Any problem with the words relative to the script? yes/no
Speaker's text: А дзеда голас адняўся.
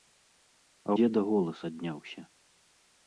no